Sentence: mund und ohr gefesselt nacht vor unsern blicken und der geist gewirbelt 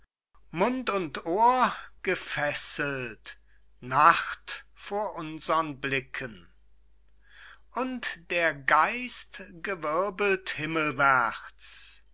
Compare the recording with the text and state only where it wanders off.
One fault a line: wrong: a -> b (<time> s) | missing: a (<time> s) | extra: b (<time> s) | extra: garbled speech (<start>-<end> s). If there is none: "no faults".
no faults